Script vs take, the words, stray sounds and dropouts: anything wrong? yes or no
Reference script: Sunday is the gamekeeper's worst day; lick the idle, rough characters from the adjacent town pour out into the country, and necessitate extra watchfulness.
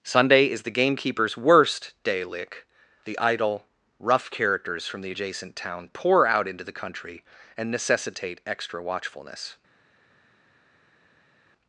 no